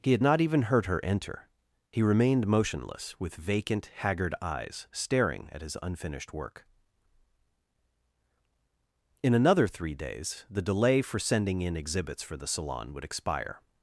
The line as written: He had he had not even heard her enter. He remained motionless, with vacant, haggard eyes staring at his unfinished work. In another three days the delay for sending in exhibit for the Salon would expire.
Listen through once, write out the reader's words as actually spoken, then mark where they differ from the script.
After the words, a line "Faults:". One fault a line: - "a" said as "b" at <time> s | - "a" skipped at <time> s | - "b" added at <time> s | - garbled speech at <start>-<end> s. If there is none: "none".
He had not even heard her enter. He remained motionless, with vacant, haggard eyes staring at his unfinished work. In another three days the delay for sending in exhibits for the Salon would expire.
Faults:
- "he had" skipped at 0.2 s
- "exhibit" said as "exhibits" at 11.7 s